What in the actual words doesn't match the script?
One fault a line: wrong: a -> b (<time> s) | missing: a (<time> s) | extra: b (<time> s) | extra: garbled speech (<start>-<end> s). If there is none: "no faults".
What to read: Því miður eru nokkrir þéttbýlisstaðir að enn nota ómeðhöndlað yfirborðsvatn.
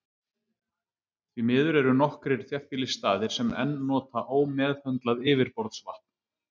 wrong: að -> sem (3.4 s)